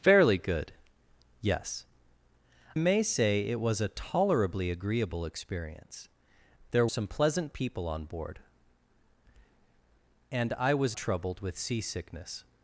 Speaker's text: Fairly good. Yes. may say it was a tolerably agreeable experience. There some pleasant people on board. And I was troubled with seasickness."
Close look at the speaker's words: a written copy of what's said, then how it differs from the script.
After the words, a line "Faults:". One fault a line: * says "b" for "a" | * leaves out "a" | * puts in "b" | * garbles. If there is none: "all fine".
Fairly good. Yes. may say it was a tolerably agreeable experience. There some pleasant people on board. And I was troubled with seasickness."
Faults:
all fine